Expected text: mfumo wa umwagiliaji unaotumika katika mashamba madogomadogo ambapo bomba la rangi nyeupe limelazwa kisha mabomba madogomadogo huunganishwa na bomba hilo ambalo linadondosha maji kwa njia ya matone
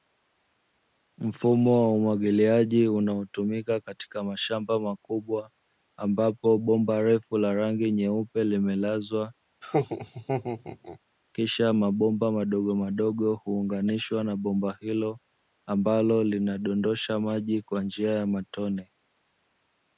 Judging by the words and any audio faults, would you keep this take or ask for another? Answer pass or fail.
fail